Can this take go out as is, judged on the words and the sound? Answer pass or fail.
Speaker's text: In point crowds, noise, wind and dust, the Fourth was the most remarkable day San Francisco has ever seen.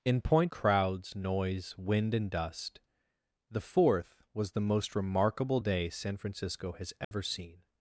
fail